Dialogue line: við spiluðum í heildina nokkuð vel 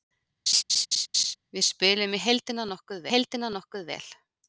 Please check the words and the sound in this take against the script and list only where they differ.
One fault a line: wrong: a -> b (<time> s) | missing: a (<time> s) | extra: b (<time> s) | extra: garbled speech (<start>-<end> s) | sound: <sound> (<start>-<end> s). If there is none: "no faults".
sound: laugh (0.5-1.4 s)
extra: heildina nokkuð (3.1 s)